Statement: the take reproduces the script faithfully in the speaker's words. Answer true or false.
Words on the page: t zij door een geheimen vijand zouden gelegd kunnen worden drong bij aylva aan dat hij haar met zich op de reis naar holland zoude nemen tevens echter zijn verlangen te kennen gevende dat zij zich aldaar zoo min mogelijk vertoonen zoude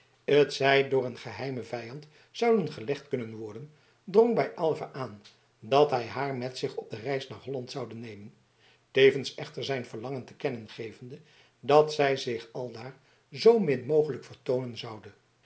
true